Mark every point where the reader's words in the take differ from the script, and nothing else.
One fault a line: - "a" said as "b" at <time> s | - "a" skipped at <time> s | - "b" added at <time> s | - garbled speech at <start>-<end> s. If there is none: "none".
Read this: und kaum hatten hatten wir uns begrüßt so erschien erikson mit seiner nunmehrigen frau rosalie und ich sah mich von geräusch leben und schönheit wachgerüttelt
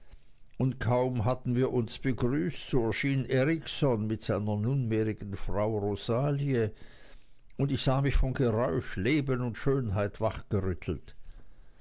- "hatten" skipped at 1.6 s